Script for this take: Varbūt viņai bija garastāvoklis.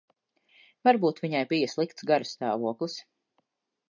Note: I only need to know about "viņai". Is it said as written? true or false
true